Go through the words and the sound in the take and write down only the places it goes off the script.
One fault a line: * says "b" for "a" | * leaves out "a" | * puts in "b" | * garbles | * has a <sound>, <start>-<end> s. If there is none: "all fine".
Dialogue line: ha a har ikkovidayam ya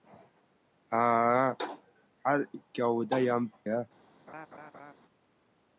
* has a laugh, 4.3-4.9 s